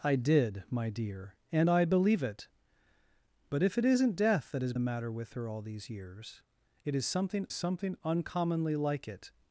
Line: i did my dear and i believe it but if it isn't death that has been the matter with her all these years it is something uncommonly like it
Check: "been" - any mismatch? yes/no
yes